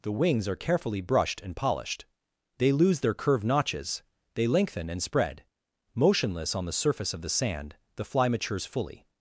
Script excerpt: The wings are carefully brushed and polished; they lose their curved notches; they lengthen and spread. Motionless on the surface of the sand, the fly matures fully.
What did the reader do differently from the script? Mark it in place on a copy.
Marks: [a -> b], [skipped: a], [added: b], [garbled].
The wings are carefully brushed and polished; they lose their curved notches; they lengthen and spread. Motionless on the surface of the sand, the fly matures fully.